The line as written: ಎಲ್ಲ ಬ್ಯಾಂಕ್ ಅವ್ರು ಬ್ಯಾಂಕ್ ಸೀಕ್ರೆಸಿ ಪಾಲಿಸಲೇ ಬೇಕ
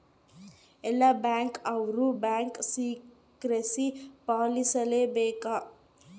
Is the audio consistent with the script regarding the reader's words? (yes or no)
yes